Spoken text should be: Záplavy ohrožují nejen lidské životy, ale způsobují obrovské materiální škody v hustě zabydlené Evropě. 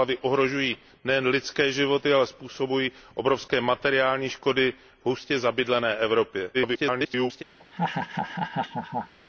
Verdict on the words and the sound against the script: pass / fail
fail